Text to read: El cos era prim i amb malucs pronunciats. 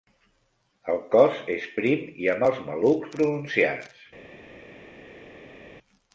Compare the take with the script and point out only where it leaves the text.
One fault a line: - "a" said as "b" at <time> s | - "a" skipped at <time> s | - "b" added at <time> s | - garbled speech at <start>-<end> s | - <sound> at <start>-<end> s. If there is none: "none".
- "era" said as "és" at 1.6 s
- "els" added at 2.5 s